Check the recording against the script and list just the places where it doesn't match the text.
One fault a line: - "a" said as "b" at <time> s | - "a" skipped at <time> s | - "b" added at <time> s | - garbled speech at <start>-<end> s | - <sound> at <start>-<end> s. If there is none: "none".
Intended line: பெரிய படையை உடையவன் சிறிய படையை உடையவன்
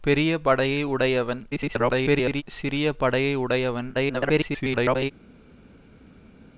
- garbled speech at 1.5-2.4 s
- garbled speech at 3.9-5.1 s